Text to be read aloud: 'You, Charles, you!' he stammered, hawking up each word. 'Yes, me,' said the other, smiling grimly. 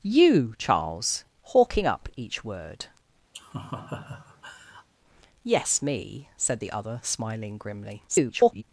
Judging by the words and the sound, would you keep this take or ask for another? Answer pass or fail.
fail